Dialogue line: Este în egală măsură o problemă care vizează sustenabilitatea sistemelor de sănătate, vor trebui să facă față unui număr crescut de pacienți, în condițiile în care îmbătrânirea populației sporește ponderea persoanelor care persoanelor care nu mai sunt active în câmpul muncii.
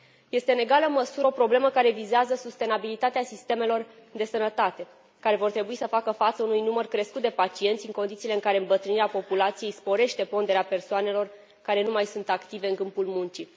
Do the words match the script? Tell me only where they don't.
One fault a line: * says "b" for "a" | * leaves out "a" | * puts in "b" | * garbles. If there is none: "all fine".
* puts in "care"
* leaves out "persoanelor care"